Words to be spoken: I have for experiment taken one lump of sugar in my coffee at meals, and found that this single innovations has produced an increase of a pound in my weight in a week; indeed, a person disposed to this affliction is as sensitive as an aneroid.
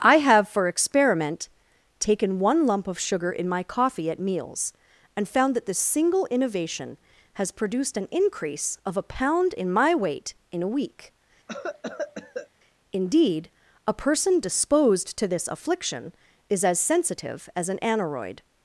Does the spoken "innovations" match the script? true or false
false